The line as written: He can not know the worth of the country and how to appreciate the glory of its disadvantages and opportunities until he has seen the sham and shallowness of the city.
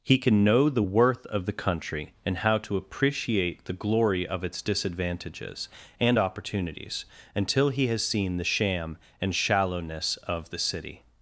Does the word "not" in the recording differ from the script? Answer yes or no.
yes